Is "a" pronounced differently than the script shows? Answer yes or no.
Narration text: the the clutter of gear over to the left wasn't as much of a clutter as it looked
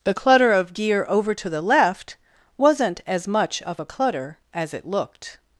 no